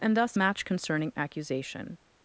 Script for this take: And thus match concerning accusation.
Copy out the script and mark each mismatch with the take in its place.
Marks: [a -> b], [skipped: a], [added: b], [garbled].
And thus match concerning accusation.